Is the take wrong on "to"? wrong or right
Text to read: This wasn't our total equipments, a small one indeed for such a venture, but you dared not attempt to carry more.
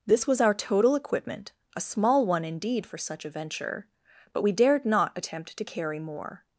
right